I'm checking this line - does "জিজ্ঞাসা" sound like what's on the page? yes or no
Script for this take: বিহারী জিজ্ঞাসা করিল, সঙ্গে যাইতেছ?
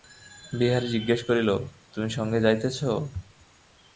yes